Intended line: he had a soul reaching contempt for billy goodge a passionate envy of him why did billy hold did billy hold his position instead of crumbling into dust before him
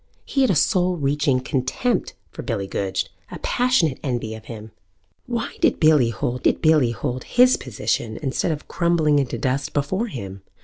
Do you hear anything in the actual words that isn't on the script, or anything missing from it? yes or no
no